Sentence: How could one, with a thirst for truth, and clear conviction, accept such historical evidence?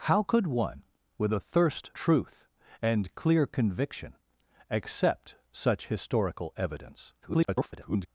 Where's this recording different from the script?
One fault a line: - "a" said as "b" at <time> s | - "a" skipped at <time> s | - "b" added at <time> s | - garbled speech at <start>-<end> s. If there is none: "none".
- "for" skipped at 1.9 s
- garbled speech at 7.2-8.1 s